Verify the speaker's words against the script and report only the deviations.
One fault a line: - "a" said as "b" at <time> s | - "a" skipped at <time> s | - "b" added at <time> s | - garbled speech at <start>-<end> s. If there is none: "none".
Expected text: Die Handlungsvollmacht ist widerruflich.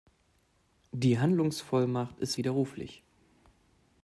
none